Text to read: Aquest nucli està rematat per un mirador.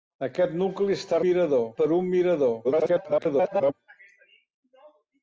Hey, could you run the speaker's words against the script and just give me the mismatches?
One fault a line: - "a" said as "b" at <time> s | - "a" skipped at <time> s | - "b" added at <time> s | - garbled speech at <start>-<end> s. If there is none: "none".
- "rematat" said as "mirador" at 1.2 s
- garbled speech at 2.6-3.7 s